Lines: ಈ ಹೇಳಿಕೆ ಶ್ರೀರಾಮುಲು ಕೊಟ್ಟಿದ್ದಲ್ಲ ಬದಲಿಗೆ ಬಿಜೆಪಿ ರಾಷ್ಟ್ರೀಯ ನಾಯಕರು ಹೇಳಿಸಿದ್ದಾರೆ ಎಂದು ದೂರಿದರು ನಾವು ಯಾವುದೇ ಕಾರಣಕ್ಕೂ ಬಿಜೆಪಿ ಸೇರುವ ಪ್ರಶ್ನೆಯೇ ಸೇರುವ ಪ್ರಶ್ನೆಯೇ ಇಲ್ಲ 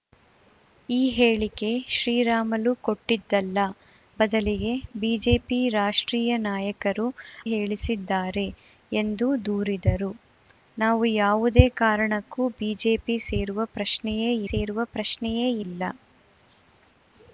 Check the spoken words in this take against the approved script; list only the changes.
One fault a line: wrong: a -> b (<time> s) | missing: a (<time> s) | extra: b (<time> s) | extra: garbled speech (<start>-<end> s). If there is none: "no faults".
no faults